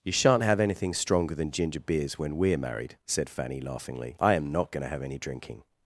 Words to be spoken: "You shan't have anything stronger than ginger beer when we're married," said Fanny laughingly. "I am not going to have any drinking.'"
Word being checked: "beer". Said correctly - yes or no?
no